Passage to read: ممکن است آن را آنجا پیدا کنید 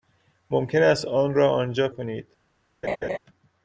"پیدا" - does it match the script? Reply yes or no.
no